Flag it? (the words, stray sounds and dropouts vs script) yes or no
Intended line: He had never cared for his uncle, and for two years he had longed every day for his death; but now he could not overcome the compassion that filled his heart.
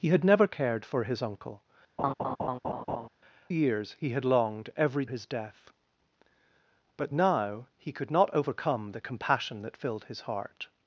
yes